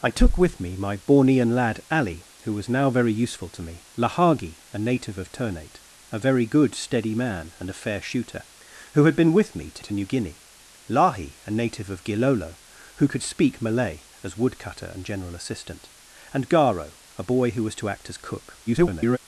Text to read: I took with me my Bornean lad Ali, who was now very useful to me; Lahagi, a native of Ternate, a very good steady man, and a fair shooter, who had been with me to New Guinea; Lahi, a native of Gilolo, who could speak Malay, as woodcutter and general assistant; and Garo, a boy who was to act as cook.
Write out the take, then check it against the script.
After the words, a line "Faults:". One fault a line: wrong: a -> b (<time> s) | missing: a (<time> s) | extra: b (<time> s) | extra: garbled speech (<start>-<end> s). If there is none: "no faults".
I took with me my Bornean lad Ali, who was now very useful to me; Lahagi, a native of Ternate, a very good steady man, and a fair shooter, who had been with me to to New Guinea; Lahi, a native of Gilolo, who could speak Malay, as woodcutter and general assistant; and Garo, a boy who was to act as cook. [garbled]
Faults:
extra: to (9.8 s)
extra: garbled speech (18.7-19.2 s)